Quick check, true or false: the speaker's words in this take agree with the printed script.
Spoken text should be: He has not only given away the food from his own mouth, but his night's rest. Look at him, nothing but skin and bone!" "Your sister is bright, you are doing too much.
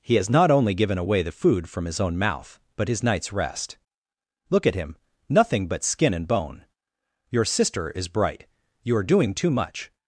true